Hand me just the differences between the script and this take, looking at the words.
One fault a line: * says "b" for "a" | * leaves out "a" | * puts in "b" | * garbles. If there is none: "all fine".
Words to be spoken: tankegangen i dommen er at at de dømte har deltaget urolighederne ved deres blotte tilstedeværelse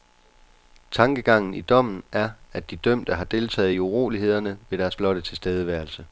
* leaves out "at"
* puts in "i"